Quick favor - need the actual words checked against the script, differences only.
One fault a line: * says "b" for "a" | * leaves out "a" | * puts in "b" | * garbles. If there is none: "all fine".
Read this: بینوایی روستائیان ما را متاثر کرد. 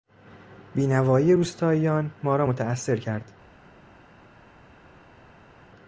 all fine